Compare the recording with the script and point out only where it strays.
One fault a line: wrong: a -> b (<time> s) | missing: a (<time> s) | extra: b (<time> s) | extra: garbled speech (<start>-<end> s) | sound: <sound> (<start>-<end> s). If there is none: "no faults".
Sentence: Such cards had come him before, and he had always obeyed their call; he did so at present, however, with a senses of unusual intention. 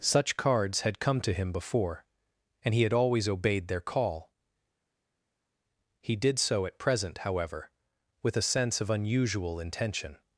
extra: to (1.2 s)
wrong: senses -> sense (8.5 s)